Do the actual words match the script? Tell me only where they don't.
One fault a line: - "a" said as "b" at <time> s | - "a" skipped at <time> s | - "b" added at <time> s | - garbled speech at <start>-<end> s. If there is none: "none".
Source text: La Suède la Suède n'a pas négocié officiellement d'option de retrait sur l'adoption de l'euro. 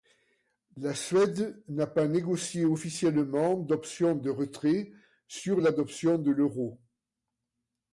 - "la Suède" skipped at 1.6 s